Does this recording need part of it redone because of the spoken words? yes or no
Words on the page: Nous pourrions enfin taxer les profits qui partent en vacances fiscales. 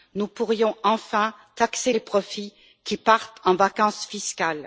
no